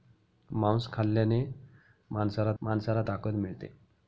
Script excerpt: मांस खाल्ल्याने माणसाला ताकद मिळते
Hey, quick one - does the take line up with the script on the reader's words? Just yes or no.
no